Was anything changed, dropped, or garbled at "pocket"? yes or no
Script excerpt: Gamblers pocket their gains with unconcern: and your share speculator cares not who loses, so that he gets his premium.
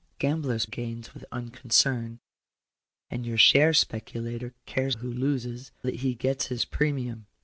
yes